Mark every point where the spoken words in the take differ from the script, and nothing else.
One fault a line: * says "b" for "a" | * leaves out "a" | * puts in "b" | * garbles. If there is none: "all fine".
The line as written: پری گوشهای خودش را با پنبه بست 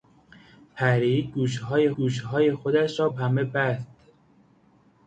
* puts in "گوشهای"
* leaves out "با"